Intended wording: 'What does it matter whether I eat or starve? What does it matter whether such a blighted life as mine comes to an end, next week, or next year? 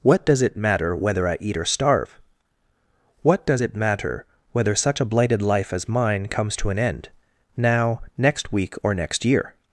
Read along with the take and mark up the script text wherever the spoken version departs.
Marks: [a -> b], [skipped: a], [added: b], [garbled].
'What does it matter whether I eat or starve? What does it matter whether such a blighted life as mine comes to an end, [added: now] next week, or next year?